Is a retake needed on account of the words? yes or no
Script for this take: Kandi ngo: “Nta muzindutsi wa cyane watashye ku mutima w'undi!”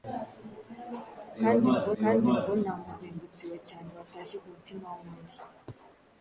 yes